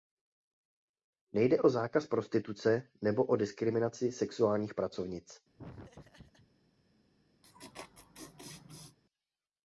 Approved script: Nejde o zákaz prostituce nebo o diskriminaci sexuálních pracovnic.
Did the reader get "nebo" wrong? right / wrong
right